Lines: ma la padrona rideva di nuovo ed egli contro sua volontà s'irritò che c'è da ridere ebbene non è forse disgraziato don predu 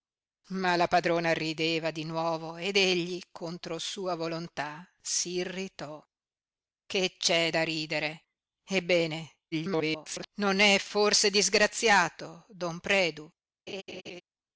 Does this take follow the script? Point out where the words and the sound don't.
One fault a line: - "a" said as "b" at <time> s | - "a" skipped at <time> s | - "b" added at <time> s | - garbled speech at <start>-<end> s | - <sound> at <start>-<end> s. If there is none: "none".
- garbled speech at 9.5-10.3 s
- laugh at 13.7-14.2 s